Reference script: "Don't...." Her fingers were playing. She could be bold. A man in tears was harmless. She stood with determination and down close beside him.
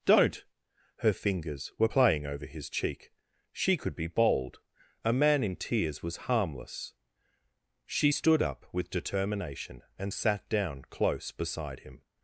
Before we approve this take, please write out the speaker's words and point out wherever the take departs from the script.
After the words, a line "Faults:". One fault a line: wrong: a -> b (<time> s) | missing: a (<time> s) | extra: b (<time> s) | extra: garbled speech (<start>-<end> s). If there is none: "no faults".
"Don't...." Her fingers were playing over his cheek. She could be bold. A man in tears was harmless. She stood up with determination and sat down close beside him.
Faults:
extra: over his cheek (2.2 s)
extra: up (8.4 s)
extra: sat (10.1 s)